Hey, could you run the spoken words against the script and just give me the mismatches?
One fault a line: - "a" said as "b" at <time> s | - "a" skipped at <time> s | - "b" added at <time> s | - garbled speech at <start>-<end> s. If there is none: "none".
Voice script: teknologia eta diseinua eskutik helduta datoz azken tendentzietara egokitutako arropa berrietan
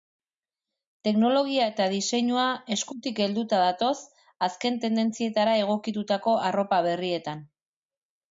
none